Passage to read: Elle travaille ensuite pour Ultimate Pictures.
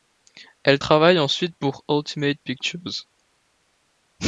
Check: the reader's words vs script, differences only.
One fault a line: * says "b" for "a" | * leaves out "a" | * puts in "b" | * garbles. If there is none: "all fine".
all fine